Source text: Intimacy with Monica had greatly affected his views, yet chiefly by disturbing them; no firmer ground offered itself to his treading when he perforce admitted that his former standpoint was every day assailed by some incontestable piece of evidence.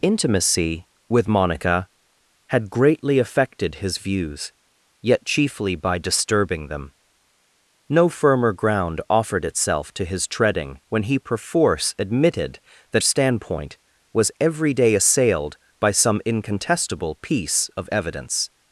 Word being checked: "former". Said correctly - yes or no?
no